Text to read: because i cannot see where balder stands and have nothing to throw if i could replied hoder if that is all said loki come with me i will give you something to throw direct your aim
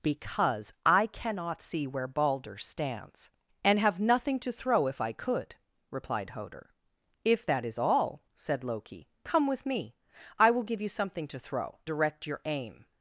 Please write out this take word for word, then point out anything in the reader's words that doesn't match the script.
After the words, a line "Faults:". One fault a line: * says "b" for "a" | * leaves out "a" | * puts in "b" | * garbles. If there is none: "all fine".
because i cannot see where balder stands and have nothing to throw if i could replied hoder if that is all said loki come with me i will give you something to throw direct your aim
Faults:
all fine